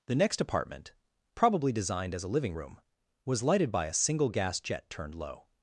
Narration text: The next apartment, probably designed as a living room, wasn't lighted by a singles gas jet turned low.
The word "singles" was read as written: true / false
false